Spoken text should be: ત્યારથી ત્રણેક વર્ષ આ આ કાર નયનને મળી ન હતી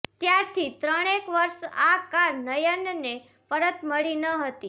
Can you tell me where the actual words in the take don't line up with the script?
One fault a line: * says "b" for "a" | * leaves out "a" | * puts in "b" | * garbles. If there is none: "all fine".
* leaves out "આ"
* puts in "પરત"